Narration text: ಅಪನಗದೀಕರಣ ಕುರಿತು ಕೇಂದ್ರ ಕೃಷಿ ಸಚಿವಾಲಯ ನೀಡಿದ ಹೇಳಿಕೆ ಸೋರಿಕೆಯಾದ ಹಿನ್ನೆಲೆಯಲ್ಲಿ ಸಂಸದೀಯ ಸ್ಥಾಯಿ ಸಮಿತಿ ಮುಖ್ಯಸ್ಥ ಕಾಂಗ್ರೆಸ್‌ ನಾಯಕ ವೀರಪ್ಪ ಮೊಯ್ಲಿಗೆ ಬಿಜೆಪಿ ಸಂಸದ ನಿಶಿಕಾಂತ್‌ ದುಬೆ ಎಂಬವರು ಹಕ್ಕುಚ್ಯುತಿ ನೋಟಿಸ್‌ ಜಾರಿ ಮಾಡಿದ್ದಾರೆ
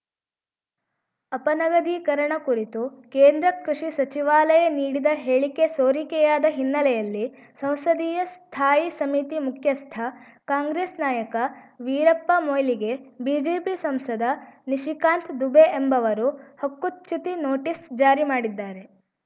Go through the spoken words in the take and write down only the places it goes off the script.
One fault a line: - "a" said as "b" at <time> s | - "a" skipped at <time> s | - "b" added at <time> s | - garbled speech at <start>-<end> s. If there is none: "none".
none